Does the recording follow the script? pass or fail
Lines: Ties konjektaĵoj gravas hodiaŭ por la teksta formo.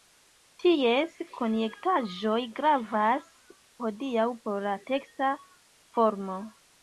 pass